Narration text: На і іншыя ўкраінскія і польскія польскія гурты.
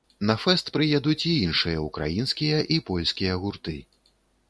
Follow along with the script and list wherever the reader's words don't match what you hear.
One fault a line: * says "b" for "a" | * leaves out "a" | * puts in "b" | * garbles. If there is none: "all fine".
* puts in "фэст прыедуць"
* leaves out "польскія"